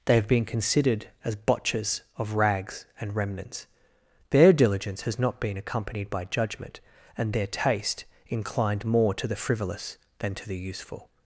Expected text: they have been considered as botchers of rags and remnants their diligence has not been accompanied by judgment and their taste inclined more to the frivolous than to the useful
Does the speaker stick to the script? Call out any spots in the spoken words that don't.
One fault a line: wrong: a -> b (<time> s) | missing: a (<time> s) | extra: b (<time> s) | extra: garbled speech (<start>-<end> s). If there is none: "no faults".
no faults